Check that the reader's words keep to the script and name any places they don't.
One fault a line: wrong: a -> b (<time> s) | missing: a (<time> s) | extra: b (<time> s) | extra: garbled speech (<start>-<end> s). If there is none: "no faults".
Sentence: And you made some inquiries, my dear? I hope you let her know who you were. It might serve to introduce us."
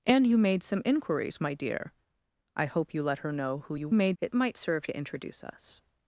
wrong: were -> made (3.9 s)